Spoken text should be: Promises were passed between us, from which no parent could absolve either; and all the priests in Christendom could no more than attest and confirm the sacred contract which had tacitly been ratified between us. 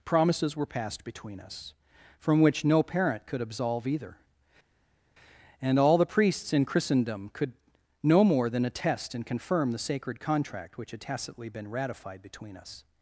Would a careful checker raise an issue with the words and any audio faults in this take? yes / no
no